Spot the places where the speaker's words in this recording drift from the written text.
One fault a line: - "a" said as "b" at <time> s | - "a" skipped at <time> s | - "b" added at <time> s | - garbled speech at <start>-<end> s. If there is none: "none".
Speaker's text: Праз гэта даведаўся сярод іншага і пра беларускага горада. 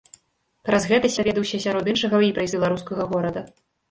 none